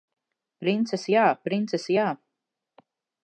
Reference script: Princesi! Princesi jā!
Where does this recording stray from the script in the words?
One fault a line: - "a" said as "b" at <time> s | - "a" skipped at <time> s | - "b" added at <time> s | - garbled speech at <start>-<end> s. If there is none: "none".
- "jā" added at 1.2 s